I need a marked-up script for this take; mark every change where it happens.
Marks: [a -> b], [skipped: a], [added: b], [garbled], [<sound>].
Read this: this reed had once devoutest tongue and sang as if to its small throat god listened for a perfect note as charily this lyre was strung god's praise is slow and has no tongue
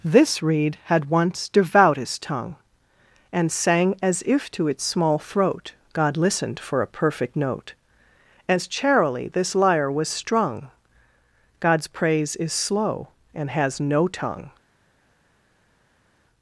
this reed had once devoutest tongue and sang as if to its small throat god listened for a perfect note as charily this lyre was strung god's praise is slow and has no tongue